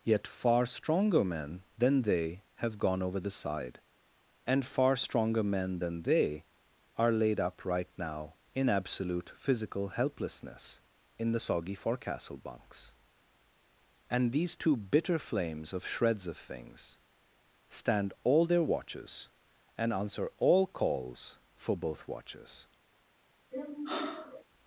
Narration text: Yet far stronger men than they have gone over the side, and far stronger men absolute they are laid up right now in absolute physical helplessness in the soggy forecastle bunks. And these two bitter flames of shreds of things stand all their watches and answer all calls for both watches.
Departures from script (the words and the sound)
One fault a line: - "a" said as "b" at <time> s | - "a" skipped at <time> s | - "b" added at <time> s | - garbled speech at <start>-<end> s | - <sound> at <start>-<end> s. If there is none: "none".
- "absolute" said as "than" at 5.8 s
- sigh at 23.5-24.4 s